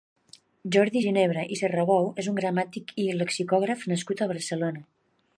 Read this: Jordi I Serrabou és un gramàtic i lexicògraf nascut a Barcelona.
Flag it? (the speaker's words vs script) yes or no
yes